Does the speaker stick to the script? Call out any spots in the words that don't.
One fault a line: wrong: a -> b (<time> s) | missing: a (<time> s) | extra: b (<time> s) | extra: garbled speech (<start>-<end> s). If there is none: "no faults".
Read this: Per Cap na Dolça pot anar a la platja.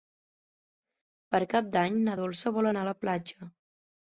extra: d'Any (1.8 s)
wrong: pot -> vol (2.6 s)